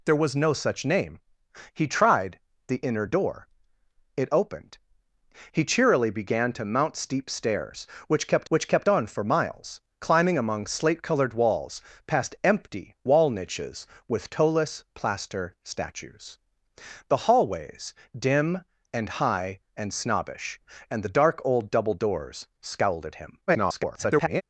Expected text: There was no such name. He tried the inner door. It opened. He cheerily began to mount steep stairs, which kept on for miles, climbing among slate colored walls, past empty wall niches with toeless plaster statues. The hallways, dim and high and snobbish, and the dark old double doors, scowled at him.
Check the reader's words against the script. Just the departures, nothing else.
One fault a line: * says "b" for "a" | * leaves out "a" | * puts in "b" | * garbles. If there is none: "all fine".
* puts in "which kept"
* garbles